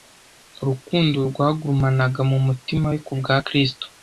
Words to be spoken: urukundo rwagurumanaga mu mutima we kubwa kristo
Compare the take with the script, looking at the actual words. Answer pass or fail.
pass